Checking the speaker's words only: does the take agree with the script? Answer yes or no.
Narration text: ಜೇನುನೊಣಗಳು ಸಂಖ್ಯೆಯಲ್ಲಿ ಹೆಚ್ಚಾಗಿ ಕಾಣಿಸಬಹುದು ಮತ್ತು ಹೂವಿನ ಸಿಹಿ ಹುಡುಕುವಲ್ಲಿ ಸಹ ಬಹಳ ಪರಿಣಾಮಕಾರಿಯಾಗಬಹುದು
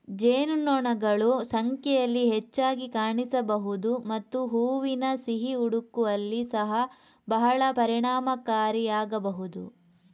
yes